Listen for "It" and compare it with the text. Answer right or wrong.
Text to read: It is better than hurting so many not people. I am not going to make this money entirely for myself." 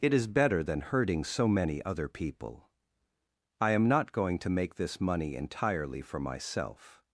right